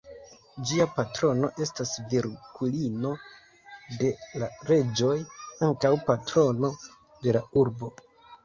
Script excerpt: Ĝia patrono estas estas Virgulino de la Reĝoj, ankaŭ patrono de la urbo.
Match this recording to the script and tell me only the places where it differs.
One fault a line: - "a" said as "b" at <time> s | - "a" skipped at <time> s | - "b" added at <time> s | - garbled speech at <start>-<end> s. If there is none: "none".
- "estas" skipped at 1.9 s